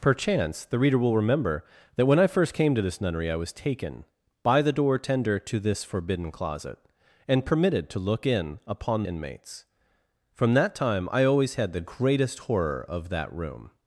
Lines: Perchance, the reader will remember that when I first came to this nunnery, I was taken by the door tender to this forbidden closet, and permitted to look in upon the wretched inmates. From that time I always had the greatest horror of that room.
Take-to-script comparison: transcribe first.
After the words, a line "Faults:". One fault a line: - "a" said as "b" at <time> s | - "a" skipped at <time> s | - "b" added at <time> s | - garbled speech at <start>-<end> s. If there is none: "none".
Perchance, the reader will remember that when I first came to this nunnery, I was taken by the door tender to this forbidden closet, and permitted to look in upon inmates. From that time I always had the greatest horror of that room.
Faults:
- "the wretched" skipped at 9.0 s